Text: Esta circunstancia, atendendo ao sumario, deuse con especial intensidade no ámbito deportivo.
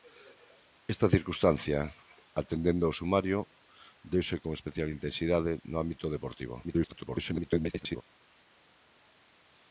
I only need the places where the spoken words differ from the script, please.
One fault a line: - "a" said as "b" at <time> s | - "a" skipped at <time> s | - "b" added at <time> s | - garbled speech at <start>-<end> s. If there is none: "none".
- garbled speech at 6.6-8.0 s